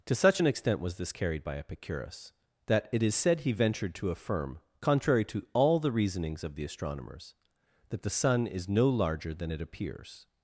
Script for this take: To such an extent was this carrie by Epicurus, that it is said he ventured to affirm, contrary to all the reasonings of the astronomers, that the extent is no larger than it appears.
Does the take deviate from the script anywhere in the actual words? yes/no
yes